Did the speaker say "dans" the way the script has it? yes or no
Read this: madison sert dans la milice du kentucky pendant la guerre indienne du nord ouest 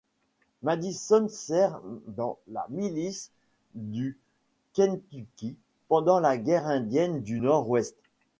yes